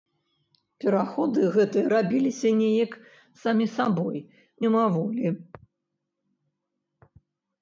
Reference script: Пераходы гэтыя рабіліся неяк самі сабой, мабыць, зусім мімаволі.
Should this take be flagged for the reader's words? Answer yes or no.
yes